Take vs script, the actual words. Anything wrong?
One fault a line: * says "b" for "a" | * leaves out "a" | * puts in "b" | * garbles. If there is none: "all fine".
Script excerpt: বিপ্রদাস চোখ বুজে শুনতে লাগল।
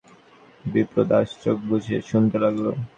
all fine